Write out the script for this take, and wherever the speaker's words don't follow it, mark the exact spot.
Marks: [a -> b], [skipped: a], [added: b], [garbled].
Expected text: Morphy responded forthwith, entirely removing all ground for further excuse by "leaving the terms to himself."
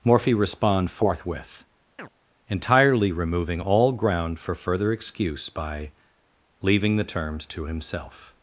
Morphy [responded -> respond] forthwith, entirely removing all ground for further excuse by "leaving the terms to himself."